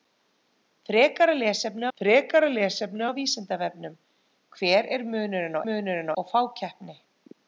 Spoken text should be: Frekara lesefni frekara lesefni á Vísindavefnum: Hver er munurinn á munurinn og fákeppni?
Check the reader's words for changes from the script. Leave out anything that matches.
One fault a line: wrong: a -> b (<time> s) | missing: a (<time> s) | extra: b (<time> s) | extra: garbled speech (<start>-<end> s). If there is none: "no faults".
no faults